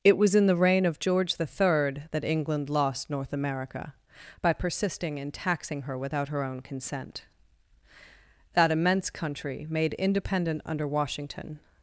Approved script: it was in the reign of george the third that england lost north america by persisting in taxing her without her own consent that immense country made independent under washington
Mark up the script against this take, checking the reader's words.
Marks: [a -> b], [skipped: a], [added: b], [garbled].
it was in the reign of george the third that england lost north america by persisting in taxing her without her own consent that immense country made independent under washington